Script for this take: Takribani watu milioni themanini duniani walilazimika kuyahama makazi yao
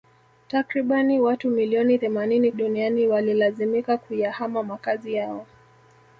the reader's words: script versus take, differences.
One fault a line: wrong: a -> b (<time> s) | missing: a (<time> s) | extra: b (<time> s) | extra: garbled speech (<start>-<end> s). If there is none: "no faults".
no faults